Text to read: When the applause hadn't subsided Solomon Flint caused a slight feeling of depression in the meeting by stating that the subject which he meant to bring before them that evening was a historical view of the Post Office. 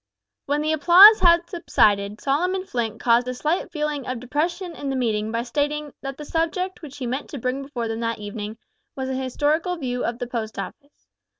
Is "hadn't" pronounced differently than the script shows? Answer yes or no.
yes